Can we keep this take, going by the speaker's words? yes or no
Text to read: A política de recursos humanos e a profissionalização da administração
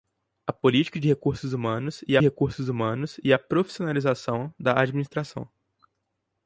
no